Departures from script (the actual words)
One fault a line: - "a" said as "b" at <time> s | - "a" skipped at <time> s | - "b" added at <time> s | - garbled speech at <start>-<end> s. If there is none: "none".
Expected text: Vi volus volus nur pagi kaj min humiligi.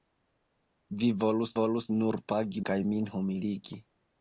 none